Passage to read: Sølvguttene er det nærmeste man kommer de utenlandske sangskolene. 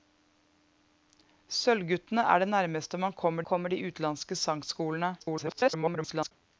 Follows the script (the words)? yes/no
no